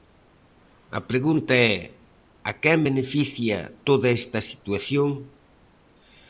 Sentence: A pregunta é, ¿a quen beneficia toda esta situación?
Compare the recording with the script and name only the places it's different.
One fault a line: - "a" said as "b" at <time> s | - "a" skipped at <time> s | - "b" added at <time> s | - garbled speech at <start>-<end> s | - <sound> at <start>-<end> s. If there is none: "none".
none